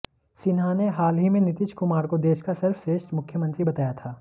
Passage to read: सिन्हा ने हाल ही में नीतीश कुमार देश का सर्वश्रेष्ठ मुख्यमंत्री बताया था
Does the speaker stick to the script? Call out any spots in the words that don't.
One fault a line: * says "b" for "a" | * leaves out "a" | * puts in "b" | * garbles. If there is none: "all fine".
* puts in "को"